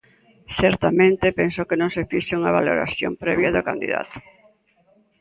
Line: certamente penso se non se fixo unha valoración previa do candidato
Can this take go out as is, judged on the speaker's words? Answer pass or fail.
fail